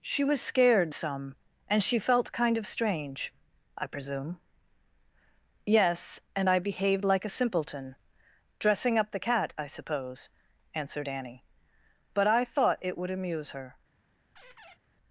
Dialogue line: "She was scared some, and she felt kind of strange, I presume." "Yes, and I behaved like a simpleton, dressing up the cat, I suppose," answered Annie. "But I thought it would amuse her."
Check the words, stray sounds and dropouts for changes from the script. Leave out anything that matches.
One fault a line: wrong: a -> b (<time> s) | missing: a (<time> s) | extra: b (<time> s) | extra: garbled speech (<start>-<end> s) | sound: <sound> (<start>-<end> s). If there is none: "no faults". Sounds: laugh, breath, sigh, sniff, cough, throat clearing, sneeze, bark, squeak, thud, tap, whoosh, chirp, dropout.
sound: squeak (14.4-14.8 s)